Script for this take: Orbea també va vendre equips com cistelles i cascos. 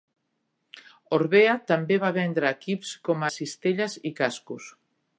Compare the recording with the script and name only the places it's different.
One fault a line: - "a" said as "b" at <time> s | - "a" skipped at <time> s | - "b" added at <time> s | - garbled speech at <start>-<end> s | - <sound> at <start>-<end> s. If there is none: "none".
none